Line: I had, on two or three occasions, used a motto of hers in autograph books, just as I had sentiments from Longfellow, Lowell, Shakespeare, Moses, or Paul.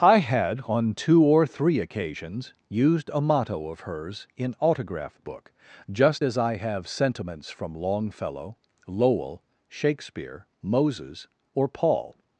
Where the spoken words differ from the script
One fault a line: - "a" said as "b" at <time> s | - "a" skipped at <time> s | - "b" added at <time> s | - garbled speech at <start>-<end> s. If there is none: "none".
- "books" said as "book" at 5.3 s
- "had" said as "have" at 6.6 s